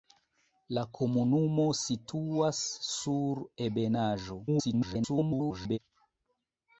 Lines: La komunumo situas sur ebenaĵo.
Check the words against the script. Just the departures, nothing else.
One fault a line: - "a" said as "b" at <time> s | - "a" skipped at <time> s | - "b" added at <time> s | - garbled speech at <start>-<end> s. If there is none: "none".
- garbled speech at 4.5-5.8 s